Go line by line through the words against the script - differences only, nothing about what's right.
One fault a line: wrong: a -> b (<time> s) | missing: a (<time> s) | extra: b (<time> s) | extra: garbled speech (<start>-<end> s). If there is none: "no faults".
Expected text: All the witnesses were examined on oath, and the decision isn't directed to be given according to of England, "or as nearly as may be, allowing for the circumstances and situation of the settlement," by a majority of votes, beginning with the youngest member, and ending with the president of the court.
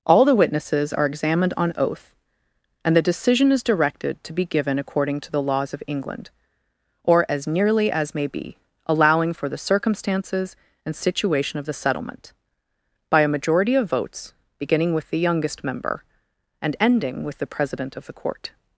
wrong: were -> are (0.9 s)
wrong: isn't -> is (3.5 s)
extra: the laws (5.3 s)